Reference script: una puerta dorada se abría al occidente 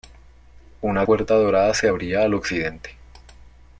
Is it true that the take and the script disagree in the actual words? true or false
false